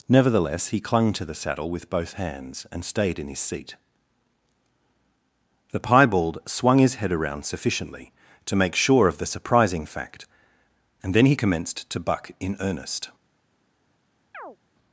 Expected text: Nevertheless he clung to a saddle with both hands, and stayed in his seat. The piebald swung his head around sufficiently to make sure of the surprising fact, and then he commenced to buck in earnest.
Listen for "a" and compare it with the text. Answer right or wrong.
wrong